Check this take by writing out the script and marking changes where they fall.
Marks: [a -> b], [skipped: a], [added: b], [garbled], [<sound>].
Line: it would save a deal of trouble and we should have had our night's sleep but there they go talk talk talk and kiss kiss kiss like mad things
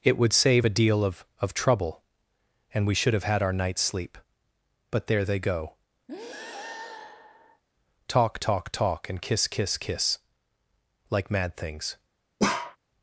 it would save a deal of [added: of] trouble and we should have had our night's sleep but there they go [breath] talk talk talk and kiss kiss kiss like mad things [bark]